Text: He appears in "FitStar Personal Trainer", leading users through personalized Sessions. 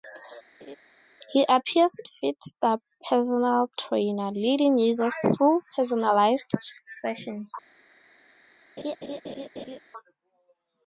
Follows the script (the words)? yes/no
no